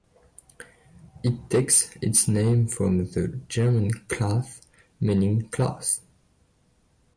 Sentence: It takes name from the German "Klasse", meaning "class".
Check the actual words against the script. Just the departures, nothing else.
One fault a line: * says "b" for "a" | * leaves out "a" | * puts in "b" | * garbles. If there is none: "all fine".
* puts in "its"